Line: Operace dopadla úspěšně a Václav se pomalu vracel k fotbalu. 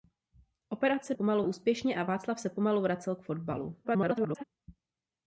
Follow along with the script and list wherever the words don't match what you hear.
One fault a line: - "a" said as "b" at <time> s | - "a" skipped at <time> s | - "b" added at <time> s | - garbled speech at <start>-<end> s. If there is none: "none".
- "dopadla" said as "pomalu" at 1.1 s
- garbled speech at 3.8-4.4 s